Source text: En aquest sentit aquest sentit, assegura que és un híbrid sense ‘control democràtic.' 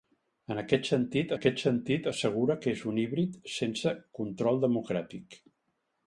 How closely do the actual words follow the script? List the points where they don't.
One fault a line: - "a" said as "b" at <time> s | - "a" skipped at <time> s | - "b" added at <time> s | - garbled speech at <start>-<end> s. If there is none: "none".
none